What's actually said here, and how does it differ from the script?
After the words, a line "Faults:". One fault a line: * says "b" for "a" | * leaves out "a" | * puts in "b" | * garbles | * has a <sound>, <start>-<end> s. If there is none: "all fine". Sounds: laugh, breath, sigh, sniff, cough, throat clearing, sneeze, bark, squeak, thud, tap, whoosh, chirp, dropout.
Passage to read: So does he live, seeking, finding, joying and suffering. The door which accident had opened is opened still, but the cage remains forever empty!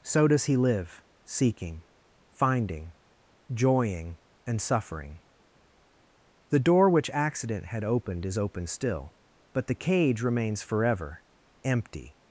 So does he live, seeking, finding, joying and suffering. The door which accident had opened is open still, but the cage remains forever empty!
Faults:
* says "open" for "opened"